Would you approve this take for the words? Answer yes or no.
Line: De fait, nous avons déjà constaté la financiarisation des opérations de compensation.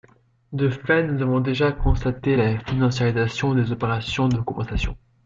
yes